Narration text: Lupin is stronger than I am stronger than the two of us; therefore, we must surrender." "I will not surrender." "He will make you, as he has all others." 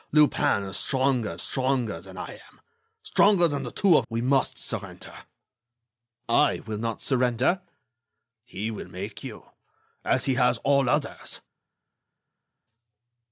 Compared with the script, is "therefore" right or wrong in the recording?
wrong